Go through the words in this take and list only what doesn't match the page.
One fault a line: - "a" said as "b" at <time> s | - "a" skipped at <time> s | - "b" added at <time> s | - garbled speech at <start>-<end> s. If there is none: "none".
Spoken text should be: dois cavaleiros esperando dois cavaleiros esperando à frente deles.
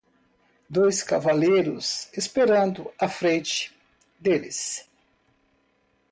- "dois cavaleiros esperando" skipped at 2.9 s